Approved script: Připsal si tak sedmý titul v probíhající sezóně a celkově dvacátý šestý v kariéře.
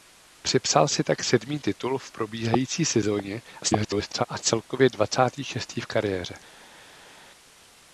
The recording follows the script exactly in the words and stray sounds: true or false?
false